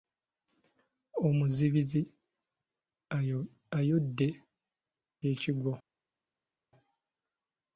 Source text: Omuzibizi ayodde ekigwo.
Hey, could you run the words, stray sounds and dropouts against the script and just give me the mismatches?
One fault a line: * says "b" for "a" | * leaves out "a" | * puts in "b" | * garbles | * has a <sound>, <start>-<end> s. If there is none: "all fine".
all fine